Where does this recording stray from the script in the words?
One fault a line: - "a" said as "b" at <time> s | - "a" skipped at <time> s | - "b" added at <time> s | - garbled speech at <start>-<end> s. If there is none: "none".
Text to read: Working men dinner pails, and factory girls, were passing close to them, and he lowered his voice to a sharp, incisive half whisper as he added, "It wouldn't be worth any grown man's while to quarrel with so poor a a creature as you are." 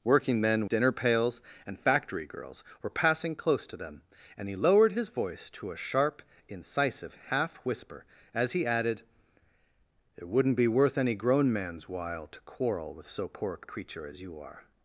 none